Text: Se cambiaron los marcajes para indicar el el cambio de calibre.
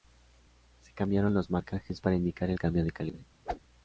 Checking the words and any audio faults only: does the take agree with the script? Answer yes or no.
no